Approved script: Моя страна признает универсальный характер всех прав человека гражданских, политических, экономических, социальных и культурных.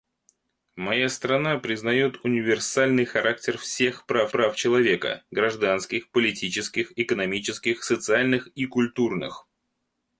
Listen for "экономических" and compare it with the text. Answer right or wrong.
right